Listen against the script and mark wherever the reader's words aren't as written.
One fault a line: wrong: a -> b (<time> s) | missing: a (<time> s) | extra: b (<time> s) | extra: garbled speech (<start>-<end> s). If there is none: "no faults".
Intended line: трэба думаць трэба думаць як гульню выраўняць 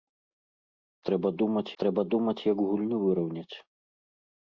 no faults